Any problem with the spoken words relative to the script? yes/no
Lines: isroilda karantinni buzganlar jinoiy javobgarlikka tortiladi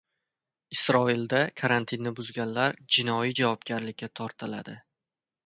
no